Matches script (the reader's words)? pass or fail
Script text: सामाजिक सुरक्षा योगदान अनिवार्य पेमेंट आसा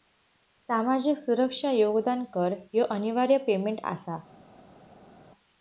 fail